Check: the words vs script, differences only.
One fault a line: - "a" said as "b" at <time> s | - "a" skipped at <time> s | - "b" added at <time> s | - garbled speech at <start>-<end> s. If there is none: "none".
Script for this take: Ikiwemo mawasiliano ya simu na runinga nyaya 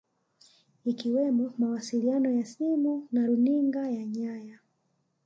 - "ya" added at 3.9 s